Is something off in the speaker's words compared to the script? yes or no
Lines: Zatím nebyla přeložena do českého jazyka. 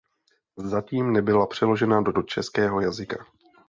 yes